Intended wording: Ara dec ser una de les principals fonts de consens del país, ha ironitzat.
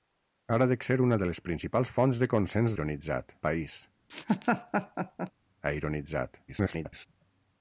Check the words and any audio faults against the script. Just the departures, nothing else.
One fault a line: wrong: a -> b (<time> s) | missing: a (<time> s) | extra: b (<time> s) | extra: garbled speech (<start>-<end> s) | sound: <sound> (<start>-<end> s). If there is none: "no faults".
wrong: del -> ironitzat (2.7 s)
sound: laugh (4.1-5.3 s)
extra: garbled speech (6.5-7.1 s)